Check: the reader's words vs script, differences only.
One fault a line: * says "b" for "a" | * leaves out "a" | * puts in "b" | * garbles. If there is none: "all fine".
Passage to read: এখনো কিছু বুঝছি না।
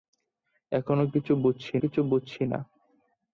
* puts in "কিছু বুঝছি"